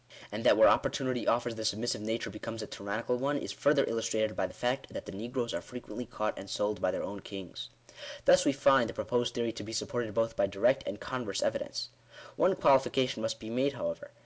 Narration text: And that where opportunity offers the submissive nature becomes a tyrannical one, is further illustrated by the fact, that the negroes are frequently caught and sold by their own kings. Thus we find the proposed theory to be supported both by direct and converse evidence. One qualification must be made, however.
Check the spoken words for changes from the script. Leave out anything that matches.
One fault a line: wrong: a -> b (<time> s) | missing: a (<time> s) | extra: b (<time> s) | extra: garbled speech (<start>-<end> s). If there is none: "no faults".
no faults